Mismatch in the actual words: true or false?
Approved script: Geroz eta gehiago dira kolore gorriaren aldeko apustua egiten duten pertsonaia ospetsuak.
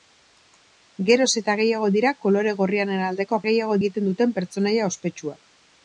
true